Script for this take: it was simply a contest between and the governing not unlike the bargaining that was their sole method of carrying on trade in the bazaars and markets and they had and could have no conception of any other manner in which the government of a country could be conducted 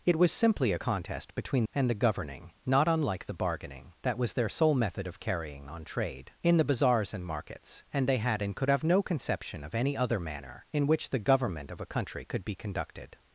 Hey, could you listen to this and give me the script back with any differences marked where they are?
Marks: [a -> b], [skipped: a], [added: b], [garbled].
it was simply a contest between and the governing not unlike the bargaining that was their sole method of carrying on trade in the bazaars and markets and they had and could have no conception of any other manner in which the government of a country could be conducted